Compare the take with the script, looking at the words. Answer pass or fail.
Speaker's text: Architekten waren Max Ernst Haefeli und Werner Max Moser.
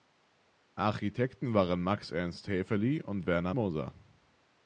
fail